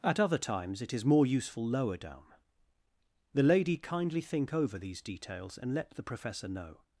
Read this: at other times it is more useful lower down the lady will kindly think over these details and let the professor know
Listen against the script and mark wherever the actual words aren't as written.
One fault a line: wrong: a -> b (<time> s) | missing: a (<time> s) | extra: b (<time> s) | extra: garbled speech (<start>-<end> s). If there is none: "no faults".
missing: will (3.8 s)